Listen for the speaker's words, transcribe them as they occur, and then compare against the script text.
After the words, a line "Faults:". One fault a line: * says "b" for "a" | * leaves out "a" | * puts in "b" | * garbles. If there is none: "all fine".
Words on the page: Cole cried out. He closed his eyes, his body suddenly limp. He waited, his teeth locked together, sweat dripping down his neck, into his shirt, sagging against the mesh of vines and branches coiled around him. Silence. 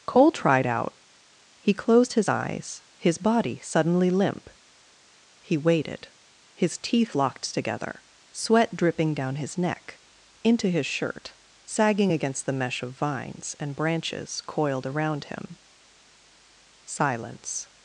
Cole tried out. He closed his eyes, his body suddenly limp. He waited, his teeth locked together, sweat dripping down his neck, into his shirt, sagging against the mesh of vines and branches coiled around him. Silence.
Faults:
* says "tried" for "cried"